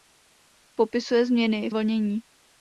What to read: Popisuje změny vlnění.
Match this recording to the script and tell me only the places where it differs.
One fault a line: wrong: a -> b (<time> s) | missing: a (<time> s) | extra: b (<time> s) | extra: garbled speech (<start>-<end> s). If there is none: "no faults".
no faults